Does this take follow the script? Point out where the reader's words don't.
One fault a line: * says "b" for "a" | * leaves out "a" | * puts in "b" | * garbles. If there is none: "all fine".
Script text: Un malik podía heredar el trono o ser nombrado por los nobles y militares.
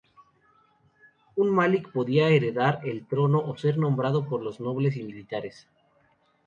all fine